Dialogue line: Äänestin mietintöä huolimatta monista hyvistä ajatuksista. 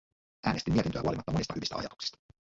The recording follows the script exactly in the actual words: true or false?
true